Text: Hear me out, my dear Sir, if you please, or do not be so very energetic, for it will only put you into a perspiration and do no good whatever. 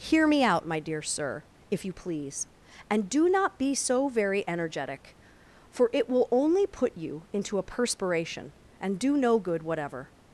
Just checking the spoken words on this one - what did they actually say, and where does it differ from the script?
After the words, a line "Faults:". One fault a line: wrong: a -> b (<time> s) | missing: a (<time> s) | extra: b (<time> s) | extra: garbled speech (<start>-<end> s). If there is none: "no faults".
Hear me out, my dear Sir, if you please, and do not be so very energetic, for it will only put you into a perspiration and do no good whatever.
Faults:
wrong: or -> and (2.9 s)